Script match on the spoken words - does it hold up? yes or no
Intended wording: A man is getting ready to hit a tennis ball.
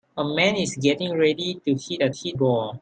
no